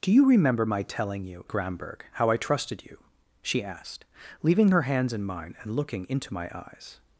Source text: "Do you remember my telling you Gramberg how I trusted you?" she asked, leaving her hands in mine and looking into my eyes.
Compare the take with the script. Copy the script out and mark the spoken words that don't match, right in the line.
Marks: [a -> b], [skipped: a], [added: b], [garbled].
"Do you remember my telling you Gramberg how I trusted you?" she asked, leaving her hands in mine and looking into my eyes.